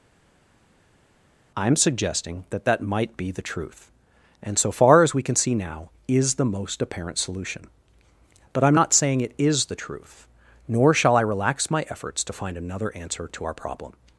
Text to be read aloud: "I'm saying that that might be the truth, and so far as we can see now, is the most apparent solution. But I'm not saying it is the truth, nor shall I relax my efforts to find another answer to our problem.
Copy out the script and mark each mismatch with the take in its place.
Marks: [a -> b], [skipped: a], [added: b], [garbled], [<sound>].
"I'm [saying -> suggesting] that that might be the truth, and so far as we can see now, is the most apparent solution. But I'm not saying it is the truth, nor shall I relax my efforts to find another answer to our problem.